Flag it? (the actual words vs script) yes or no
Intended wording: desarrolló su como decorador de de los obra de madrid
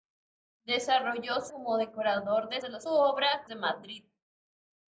no